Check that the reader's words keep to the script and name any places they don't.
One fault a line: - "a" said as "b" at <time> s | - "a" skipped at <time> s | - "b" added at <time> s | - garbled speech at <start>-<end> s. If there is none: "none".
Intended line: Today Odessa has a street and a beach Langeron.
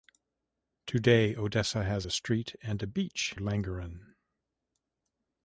none